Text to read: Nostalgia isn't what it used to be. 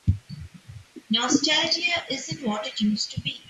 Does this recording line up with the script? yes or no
yes